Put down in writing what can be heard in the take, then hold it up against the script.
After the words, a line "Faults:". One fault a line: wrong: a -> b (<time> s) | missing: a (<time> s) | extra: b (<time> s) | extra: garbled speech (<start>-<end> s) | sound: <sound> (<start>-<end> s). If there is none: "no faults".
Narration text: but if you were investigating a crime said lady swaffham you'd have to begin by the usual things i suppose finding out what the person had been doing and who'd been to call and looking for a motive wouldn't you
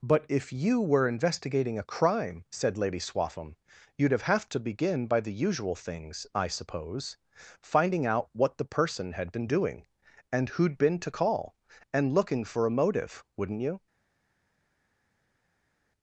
but if you were investigating a crime said lady swaffham you'd have have to begin by the usual things i suppose finding out what the person had been doing and who'd been to call and looking for a motive wouldn't you
Faults:
extra: have (4.2 s)